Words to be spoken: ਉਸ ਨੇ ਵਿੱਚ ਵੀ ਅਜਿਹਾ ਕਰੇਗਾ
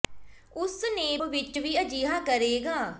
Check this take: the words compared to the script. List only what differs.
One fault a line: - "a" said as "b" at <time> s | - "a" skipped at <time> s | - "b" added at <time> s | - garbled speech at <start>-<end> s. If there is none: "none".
none